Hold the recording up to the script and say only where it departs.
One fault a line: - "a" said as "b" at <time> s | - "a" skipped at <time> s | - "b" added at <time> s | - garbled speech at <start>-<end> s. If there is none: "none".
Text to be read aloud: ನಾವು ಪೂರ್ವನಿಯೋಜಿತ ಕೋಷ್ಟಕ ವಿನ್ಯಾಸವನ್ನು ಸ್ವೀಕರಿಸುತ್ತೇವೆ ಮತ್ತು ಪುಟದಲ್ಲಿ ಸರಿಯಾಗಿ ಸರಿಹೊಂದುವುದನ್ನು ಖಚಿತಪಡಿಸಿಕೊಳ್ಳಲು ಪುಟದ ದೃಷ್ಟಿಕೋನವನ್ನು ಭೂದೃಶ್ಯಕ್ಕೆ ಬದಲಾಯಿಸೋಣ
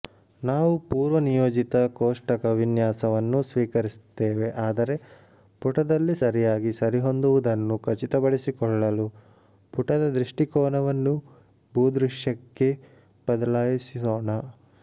- "ಮತ್ತು" said as "ಆದರೆ" at 4.6 s